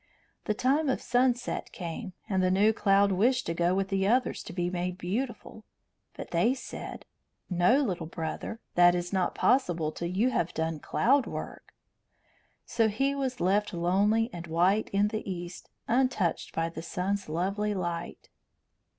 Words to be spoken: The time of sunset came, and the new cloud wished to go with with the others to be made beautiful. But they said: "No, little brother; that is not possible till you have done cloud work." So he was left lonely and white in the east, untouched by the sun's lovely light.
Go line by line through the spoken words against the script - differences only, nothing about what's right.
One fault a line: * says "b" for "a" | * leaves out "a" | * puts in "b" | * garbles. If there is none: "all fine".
* leaves out "with"